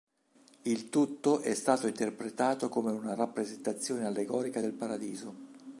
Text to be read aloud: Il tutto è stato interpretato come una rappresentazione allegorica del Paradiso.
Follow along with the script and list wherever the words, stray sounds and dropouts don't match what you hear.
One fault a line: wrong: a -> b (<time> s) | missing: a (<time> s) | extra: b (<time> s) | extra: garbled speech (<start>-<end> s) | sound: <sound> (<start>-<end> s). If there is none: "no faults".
no faults